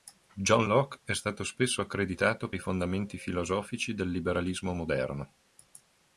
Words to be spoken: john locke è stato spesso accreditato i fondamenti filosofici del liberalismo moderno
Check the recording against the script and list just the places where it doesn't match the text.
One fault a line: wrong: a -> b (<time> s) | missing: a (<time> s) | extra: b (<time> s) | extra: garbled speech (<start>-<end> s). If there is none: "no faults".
no faults